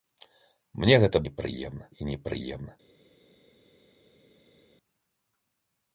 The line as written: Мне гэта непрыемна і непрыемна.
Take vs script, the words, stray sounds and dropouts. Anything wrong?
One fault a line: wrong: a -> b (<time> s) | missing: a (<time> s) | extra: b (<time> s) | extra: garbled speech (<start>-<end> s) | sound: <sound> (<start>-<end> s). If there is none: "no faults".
no faults